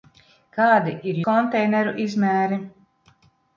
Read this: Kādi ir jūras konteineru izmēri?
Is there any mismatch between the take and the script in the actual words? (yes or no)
yes